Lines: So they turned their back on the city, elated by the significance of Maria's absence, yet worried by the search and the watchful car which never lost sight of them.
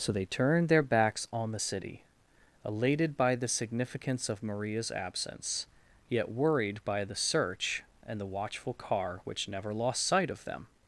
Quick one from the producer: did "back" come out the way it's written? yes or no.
no